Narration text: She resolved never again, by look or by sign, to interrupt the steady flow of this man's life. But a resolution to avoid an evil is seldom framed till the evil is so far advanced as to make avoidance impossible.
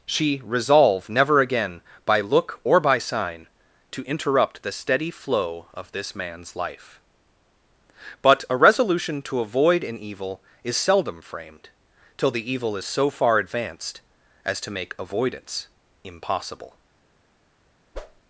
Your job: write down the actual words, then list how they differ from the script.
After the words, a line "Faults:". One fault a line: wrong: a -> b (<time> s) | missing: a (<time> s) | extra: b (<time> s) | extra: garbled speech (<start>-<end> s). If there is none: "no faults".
She resolve never again, by look or by sign, to interrupt the steady flow of this man's life. But a resolution to avoid an evil is seldom framed till the evil is so far advanced as to make avoidance impossible.
Faults:
wrong: resolved -> resolve (0.4 s)